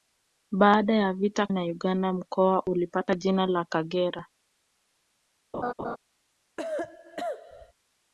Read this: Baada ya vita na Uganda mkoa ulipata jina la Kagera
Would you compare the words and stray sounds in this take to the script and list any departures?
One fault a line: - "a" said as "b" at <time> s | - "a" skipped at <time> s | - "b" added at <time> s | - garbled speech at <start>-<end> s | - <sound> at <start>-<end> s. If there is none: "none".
- laugh at 5.5-6.0 s
- cough at 6.6-7.7 s